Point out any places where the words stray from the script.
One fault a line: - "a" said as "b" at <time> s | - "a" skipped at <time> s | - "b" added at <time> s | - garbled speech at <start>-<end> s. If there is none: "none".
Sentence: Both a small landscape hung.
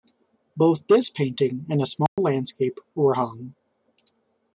- "this painting and" added at 0.9 s
- "were" added at 2.9 s